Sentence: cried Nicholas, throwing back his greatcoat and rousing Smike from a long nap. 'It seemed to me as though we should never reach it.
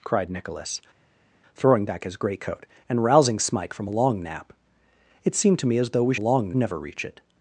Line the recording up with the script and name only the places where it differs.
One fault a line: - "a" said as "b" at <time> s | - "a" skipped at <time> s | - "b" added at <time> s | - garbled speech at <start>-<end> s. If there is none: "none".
- "should" said as "long" at 6.2 s